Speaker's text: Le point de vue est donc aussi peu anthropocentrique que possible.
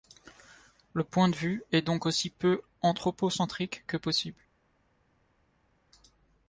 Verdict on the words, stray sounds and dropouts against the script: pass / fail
pass